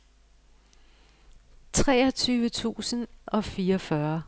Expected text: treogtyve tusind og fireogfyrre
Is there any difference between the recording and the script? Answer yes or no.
no